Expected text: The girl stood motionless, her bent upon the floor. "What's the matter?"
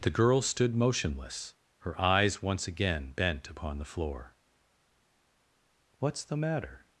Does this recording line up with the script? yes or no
no